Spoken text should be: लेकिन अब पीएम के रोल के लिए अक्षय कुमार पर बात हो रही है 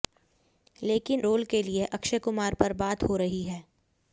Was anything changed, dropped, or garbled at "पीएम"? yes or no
yes